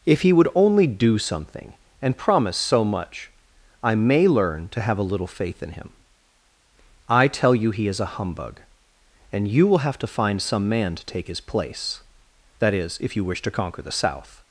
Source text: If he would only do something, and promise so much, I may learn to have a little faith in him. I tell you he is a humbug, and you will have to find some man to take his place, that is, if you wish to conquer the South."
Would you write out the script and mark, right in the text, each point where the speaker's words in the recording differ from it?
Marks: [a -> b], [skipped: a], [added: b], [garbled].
If he would only do something, and promise so much, I may learn to have a little faith in him. I tell you he is a humbug, and you will have to find some man to take his place, that is, if you wish to conquer the South."